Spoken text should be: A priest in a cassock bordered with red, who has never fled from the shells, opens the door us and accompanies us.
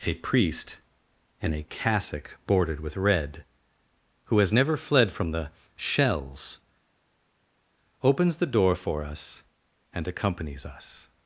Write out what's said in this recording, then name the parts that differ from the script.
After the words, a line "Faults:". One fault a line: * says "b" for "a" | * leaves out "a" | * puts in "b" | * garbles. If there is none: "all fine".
A priest in a cassock bordered with red, who has never fled from the shells, opens the door for us and accompanies us.
Faults:
* puts in "for"